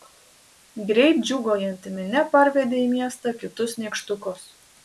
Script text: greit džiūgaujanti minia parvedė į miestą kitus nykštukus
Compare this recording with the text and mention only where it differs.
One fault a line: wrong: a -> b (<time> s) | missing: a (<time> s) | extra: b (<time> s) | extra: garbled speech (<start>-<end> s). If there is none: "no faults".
no faults